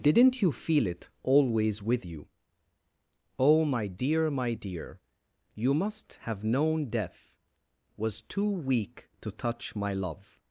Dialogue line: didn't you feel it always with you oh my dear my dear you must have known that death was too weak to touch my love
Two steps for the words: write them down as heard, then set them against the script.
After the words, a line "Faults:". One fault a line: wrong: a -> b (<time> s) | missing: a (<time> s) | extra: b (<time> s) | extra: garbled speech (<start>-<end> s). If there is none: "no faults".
didn't you feel it always with you oh my dear my dear you must have known death was too weak to touch my love
Faults:
missing: that (6.9 s)